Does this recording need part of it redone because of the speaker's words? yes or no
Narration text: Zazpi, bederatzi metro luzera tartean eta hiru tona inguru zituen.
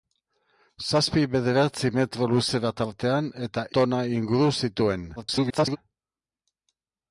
yes